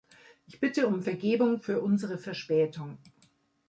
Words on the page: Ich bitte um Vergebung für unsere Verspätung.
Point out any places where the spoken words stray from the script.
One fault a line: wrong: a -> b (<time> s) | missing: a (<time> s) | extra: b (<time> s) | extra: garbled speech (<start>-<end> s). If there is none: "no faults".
no faults